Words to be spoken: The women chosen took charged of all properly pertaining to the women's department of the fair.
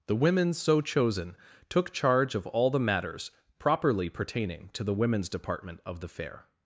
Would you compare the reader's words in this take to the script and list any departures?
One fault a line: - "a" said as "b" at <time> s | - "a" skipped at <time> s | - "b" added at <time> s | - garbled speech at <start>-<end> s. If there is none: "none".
- "so" added at 0.5 s
- "charged" said as "charge" at 1.9 s
- "the matters" added at 2.7 s